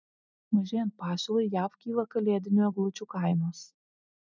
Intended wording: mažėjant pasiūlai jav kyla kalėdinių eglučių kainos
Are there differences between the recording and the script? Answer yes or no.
no